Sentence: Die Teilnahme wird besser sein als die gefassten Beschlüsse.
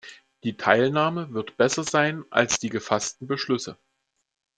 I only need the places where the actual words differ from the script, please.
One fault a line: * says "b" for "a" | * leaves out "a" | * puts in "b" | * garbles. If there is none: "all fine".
all fine